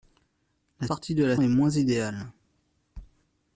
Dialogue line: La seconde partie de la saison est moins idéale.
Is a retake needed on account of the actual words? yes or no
yes